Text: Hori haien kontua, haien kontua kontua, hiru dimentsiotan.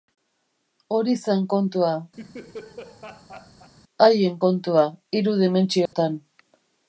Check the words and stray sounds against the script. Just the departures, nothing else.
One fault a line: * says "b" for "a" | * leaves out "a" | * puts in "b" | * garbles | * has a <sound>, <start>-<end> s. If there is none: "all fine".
* says "zen" for "haien"
* has a laugh, 2.2-3.7 s
* leaves out "kontua"
* has a dropout, 5.9-5.9 s